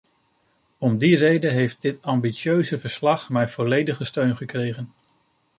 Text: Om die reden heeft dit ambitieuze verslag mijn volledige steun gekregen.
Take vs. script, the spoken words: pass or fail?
pass